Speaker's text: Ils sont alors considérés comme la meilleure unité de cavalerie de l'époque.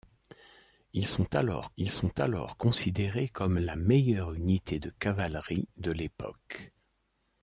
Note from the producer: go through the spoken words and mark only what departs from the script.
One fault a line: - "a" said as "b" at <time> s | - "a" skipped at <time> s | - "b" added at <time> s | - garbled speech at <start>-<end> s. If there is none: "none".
- "ils sont alors" added at 1.8 s